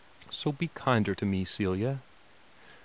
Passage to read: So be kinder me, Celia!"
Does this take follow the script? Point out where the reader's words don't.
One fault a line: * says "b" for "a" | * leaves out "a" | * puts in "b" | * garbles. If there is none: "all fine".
* puts in "to"